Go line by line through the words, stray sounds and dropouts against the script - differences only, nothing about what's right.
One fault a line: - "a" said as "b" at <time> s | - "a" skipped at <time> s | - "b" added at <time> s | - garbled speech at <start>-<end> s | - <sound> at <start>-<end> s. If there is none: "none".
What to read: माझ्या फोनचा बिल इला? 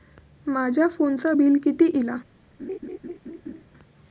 - "किती" added at 1.6 s
- laugh at 2.6-3.6 s